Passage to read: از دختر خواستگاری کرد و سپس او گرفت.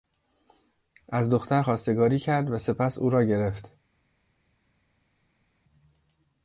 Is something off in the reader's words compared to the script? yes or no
yes